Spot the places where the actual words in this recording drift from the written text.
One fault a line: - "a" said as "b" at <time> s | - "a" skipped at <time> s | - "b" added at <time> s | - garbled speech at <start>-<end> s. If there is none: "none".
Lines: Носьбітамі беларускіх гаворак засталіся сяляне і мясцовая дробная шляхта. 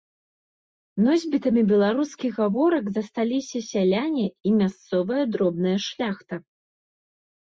none